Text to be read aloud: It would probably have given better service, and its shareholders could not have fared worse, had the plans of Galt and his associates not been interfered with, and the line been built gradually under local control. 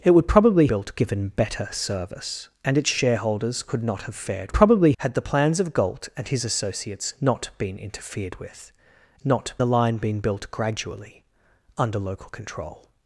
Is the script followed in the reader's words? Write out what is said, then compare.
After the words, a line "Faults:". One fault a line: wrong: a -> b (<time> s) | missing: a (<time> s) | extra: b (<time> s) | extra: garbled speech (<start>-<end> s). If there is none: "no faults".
It would probably built given better service, and its shareholders could not have fared probably, had the plans of Galt and his associates not been interfered with, not the line been built gradually under local control.
Faults:
wrong: have -> built (0.6 s)
wrong: worse -> probably (4.5 s)
wrong: and -> not (9.2 s)